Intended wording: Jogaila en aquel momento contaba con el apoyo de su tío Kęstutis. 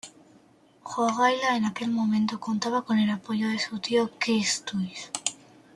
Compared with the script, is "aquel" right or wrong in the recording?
right